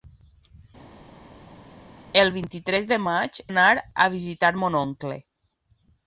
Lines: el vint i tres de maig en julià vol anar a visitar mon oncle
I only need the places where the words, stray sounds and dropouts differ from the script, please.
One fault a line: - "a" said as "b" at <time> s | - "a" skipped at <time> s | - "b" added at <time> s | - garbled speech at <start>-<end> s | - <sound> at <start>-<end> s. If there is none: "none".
- "en julià vol" skipped at 3.4 s